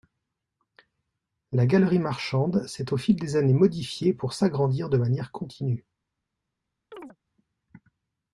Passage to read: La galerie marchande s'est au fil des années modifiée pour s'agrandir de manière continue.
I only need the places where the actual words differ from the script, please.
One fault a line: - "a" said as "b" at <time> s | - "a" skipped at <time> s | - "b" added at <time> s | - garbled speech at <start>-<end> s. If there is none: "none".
none